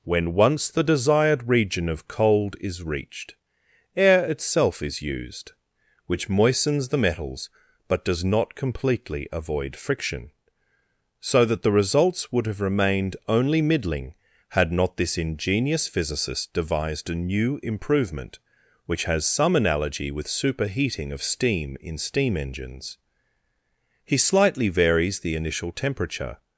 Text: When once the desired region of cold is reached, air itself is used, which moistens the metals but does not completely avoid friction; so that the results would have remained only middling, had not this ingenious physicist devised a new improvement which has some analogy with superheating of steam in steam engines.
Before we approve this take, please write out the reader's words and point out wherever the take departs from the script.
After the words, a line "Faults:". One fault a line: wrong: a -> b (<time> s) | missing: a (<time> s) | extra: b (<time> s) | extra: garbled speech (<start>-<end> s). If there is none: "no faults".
When once the desired region of cold is reached, air itself is used, which moistens the metals but does not completely avoid friction; so that the results would have remained only middling, had not this ingenious physicist devised a new improvement which has some analogy with superheating of steam in steam engines. He slightly varies the initial temperature
Faults:
extra: He slightly varies the initial temperature (24.0 s)